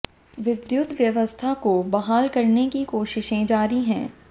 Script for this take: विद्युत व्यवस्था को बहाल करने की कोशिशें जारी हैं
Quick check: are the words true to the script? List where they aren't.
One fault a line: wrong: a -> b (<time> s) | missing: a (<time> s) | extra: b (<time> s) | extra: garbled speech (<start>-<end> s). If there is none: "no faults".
no faults